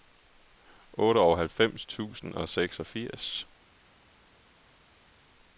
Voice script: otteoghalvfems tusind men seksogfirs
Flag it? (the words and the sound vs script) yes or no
yes